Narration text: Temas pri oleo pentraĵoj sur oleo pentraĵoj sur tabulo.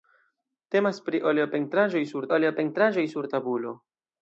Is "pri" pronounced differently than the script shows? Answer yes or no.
no